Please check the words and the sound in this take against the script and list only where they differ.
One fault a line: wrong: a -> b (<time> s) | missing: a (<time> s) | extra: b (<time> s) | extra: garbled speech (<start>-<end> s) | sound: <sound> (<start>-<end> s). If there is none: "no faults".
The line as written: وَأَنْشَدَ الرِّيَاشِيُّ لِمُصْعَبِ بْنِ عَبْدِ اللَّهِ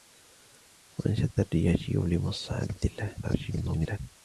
missing: بْنِ (2.7 s)
extra: garbled speech (3.2-4.0 s)